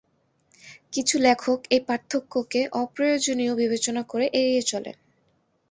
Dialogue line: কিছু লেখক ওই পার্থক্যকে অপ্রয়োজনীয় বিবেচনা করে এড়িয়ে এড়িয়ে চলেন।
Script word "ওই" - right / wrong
wrong